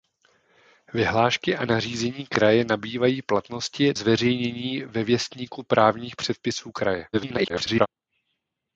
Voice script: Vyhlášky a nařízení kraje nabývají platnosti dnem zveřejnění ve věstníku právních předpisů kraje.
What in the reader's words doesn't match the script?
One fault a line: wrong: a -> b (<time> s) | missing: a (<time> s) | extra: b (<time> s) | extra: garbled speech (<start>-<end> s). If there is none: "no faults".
missing: dnem (3.9 s)
extra: garbled speech (7.1-7.9 s)